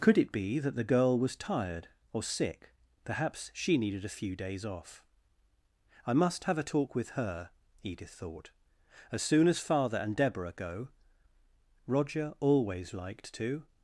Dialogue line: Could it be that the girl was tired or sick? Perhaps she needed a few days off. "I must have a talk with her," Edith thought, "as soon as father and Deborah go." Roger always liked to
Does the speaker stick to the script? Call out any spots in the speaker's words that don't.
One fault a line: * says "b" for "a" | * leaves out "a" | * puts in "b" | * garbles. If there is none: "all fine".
all fine